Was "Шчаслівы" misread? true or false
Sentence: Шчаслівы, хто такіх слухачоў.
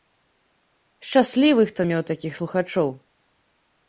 false